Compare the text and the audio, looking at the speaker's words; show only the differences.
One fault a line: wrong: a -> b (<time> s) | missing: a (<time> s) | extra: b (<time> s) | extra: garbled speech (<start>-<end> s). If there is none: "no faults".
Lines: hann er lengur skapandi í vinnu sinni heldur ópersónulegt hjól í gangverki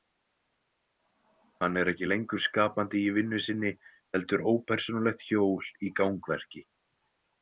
extra: ekki (1.9 s)